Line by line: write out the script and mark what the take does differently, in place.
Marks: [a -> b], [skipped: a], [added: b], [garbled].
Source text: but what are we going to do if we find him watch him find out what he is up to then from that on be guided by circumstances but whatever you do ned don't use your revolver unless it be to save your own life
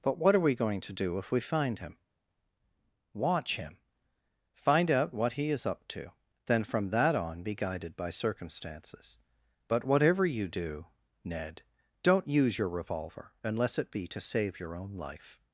but what are we going to do if we find him watch him find out what he is up to then from that on be guided by circumstances but whatever you do ned don't use your revolver unless it be to save your own life